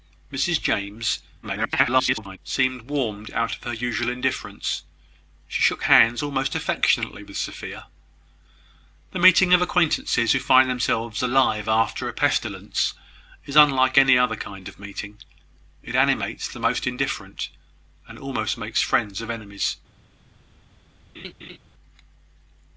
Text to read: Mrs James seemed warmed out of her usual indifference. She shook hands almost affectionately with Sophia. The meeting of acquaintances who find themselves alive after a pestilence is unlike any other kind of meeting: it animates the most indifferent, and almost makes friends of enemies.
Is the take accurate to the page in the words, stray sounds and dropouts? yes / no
no